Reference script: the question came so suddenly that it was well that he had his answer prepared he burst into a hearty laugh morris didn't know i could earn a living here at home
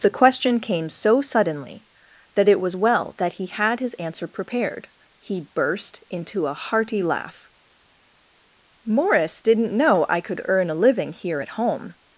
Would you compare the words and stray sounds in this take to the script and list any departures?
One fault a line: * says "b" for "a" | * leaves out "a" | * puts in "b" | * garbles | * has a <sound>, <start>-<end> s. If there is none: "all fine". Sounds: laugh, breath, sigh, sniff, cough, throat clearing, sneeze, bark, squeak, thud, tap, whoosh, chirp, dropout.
all fine